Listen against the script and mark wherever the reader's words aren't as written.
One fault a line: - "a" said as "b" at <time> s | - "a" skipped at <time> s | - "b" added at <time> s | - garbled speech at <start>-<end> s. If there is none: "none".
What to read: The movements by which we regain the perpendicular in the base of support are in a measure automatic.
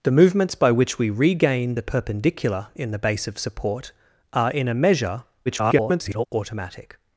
- garbled speech at 5.5-6.3 s